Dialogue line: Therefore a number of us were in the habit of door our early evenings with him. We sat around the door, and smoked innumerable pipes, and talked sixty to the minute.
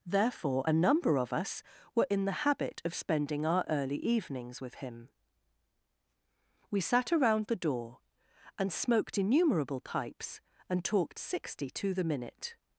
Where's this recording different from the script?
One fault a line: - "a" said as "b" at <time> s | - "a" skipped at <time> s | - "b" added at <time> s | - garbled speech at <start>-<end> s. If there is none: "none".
- "door" said as "spending" at 2.9 s